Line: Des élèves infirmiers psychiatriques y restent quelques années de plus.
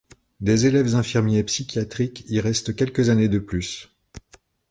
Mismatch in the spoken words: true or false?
false